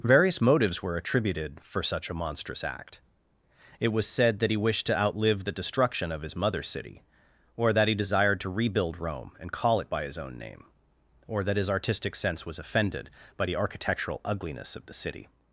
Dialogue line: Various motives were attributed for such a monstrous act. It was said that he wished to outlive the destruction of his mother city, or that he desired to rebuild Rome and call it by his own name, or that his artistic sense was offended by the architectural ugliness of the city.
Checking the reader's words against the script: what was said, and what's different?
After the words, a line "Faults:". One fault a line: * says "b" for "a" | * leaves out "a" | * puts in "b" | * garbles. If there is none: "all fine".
Various motives were attributed for such a monstrous act. It was said that he wished to outlive the destruction of his mother city, or that he desired to rebuild Rome and call it by his own name, or that his artistic sense was offended by the architectural ugliness of the city.
Faults:
all fine